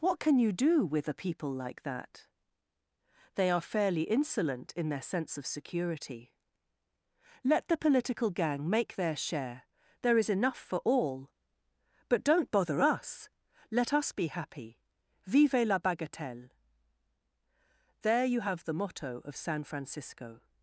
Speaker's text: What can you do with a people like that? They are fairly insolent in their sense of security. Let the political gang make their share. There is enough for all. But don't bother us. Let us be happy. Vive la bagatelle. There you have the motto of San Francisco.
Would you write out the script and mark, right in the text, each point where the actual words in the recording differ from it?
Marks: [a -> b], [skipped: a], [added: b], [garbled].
What can you do with a people like that? They are fairly insolent in their sense of security. Let the political gang make their share. There is enough for all. But don't bother us. Let us be happy. Vive la bagatelle. There you have the motto of San Francisco.